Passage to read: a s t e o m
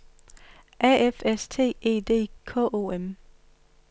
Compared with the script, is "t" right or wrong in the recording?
right